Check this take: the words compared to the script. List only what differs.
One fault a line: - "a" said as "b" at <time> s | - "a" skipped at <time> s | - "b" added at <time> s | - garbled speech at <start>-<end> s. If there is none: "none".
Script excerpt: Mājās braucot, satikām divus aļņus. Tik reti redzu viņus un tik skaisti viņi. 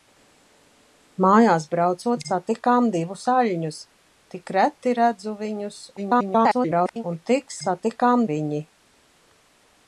- garbled speech at 6.0-7.0 s
- "skaisti" said as "satikām" at 7.6 s